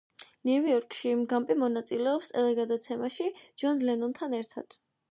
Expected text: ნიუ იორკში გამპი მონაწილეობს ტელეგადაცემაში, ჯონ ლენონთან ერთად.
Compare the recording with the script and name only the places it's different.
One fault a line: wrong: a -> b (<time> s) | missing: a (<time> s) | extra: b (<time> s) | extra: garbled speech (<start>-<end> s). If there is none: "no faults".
no faults